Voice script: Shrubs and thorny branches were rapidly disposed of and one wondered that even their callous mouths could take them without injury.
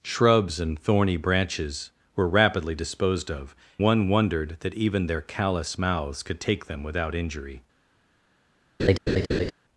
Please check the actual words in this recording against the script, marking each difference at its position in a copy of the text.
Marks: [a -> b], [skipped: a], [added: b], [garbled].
Shrubs and thorny branches were rapidly disposed of [skipped: and] one wondered that even their callous mouths could take them without injury.